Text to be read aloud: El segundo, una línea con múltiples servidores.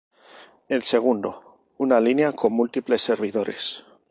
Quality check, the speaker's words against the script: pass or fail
pass